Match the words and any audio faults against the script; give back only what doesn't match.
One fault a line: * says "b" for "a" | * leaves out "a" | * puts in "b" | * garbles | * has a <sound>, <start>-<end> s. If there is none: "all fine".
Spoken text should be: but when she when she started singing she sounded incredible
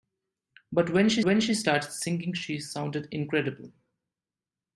all fine